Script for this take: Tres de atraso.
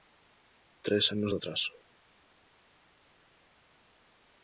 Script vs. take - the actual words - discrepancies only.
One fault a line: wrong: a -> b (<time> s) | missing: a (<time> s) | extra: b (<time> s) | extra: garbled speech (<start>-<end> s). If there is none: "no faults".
extra: anos (1.1 s)